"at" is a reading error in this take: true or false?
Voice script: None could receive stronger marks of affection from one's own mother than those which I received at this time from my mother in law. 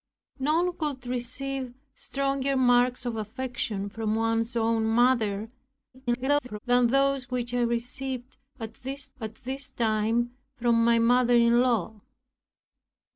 false